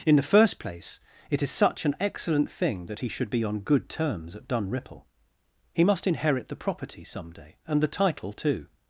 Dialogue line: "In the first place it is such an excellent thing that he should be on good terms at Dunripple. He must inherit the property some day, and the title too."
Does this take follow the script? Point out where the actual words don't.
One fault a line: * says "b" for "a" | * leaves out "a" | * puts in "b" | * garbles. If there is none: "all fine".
all fine